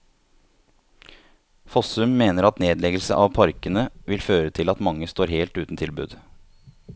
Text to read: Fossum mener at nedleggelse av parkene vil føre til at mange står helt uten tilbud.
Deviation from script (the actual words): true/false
false